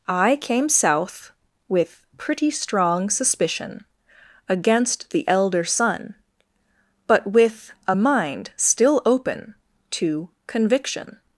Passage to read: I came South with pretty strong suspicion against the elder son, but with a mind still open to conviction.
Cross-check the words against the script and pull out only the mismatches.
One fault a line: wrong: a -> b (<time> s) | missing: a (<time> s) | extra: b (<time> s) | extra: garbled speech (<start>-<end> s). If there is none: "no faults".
no faults